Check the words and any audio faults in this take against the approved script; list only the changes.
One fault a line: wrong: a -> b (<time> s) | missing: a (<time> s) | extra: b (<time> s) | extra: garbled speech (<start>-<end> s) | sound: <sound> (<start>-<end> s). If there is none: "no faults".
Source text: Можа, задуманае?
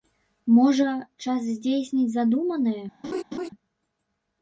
extra: час здзейсніць (1.3 s)
sound: laugh (3.0-3.5 s)